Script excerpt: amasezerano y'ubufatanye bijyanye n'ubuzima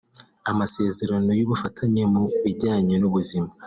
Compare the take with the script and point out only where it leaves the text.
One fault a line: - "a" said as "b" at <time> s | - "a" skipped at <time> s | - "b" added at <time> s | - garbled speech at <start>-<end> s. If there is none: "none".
- "mu" added at 2.1 s